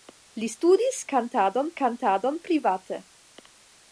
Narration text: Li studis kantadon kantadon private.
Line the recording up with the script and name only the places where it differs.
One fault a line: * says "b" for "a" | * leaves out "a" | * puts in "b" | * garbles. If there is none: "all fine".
all fine